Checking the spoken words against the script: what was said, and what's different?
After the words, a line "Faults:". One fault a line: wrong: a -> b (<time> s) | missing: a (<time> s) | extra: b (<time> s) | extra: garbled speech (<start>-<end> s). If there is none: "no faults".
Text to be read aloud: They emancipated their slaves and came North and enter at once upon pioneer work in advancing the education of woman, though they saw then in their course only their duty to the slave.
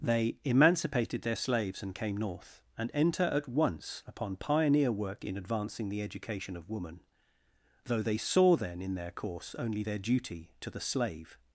They emancipated their slaves and came North and enter at once upon pioneer work in advancing the education of woman, though they saw then in their course only their duty to the slave.
Faults:
no faults